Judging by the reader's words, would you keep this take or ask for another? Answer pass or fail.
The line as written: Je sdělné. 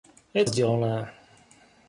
pass